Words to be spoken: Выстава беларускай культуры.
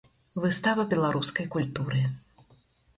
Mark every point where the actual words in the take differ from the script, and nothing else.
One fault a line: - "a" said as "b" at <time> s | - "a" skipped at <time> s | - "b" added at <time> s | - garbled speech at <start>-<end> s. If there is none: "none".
none